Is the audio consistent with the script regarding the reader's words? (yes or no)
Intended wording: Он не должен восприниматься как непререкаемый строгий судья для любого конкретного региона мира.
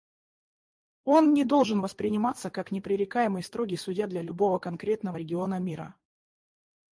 yes